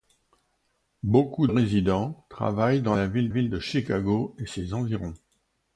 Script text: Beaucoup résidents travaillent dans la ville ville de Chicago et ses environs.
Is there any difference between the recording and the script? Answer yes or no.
no